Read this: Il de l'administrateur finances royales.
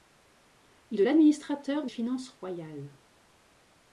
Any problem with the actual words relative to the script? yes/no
no